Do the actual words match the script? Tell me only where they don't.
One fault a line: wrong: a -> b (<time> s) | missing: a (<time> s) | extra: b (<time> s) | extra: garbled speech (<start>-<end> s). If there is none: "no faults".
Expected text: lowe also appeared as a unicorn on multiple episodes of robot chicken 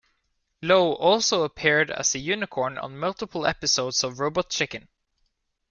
no faults